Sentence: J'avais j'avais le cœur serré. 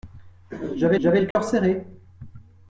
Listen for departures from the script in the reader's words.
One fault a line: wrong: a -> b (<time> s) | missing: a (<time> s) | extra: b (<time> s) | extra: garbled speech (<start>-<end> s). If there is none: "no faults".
no faults